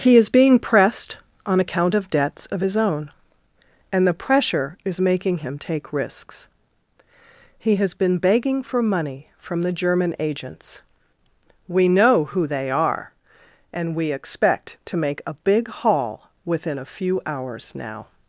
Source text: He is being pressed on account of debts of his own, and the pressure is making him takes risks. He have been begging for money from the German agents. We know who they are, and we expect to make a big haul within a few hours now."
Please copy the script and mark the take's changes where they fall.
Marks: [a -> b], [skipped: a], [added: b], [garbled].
He is being pressed on account of debts of his own, and the pressure is making him [takes -> take] risks. He [have -> has] been begging for money from the German agents. We know who they are, and we expect to make a big haul within a few hours now."